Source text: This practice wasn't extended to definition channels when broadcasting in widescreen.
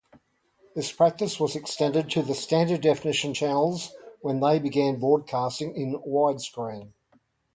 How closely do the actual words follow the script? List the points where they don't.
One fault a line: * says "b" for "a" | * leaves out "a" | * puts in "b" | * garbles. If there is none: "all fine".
* says "was" for "wasn't"
* puts in "the standard"
* puts in "they began"